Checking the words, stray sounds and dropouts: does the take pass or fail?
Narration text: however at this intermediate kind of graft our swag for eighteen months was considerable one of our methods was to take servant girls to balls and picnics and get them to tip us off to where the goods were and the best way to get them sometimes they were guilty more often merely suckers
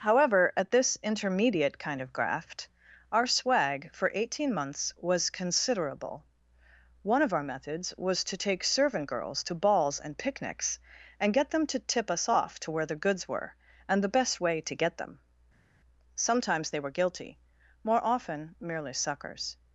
pass